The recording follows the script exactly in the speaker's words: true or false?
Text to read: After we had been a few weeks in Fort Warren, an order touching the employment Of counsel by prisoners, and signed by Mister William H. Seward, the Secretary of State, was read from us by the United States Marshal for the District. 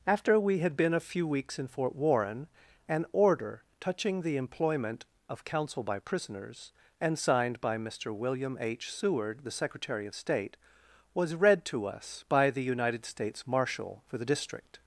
false